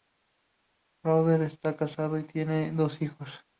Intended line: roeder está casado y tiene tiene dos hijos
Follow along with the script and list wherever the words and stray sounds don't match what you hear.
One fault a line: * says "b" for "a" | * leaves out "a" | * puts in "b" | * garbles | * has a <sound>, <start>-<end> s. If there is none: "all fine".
* leaves out "tiene"